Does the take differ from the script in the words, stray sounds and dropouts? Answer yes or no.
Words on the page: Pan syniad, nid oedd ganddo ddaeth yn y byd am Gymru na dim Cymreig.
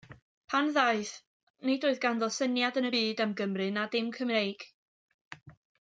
yes